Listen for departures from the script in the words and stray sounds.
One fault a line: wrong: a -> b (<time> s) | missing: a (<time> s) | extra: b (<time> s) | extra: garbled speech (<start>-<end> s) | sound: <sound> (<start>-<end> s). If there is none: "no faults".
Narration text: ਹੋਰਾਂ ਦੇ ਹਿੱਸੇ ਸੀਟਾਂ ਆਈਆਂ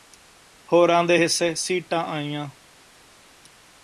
no faults